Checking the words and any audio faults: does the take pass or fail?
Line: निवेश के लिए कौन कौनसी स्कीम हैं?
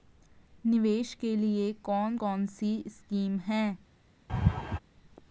fail